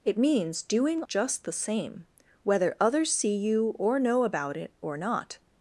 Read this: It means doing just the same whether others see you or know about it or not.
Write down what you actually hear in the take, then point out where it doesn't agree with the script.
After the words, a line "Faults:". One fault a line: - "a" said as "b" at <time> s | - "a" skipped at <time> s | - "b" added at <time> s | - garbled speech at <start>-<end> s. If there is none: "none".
It means doing just the same whether others see you or know about it or not.
Faults:
none